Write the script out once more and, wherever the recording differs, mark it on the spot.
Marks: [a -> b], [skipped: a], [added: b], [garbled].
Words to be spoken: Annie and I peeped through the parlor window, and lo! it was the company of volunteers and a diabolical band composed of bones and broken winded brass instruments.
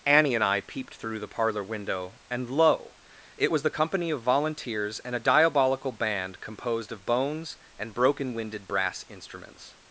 Annie and I peeped through the parlor window, and lo! it was the company of volunteers and a diabolical band composed of bones and broken winded brass instruments.